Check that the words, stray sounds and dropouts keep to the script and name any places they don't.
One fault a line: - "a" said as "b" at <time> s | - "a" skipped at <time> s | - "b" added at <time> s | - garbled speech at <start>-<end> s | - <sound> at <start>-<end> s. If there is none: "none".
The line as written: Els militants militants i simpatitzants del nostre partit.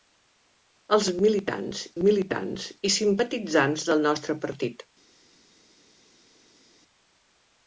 none